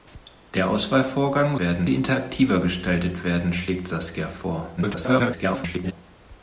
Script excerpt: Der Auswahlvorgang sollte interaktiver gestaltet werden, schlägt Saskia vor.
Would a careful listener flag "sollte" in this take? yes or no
yes